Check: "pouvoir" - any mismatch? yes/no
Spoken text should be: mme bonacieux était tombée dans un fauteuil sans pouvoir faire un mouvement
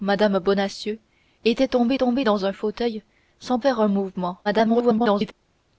yes